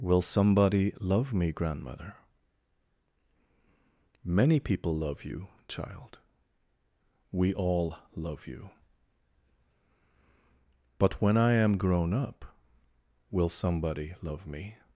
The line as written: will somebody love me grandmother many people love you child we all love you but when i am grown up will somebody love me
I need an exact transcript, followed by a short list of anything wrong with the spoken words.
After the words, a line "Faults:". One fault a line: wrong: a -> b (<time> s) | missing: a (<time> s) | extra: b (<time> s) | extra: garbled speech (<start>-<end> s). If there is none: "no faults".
will somebody love me grandmother many people love you child we all love you but when i am grown up will somebody love me
Faults:
no faults